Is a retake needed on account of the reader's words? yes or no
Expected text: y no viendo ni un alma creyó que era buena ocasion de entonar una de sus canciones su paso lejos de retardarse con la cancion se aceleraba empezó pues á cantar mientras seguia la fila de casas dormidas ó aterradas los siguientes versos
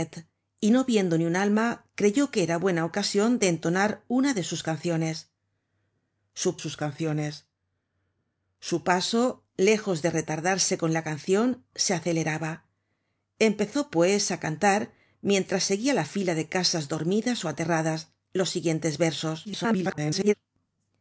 yes